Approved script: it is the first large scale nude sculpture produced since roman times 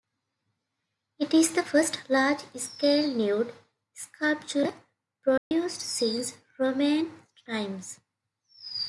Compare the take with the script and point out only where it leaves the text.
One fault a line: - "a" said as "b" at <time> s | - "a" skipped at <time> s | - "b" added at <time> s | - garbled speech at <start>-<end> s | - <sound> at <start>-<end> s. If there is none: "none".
- dropout at 5.4-5.5 s